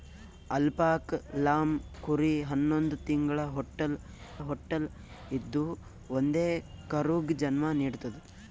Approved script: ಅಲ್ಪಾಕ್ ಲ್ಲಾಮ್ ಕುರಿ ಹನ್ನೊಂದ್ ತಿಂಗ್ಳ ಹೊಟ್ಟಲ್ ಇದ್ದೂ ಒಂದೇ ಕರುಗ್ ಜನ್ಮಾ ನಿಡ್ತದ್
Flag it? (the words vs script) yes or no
yes